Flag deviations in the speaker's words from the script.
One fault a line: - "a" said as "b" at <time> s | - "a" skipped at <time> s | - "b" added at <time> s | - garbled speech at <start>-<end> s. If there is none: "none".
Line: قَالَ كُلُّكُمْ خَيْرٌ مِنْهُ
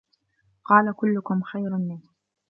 none